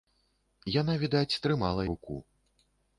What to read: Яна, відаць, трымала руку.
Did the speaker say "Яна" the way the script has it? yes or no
yes